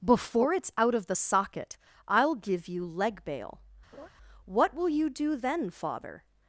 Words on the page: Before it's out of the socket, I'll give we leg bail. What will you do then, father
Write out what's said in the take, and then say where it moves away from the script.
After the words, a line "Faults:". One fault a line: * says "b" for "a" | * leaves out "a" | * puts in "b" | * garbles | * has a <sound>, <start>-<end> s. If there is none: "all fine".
Before it's out of the socket, I'll give you leg bail. What will you do then, father
Faults:
* says "you" for "we"
* has a laugh, 3.9-4.1 s